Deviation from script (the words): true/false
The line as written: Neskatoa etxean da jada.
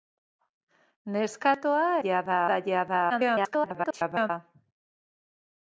true